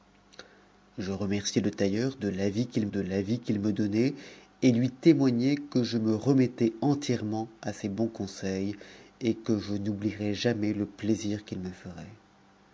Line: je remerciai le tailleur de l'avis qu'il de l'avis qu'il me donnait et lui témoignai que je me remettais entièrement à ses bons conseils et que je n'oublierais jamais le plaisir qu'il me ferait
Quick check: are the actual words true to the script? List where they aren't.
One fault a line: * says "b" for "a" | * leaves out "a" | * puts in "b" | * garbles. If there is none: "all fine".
all fine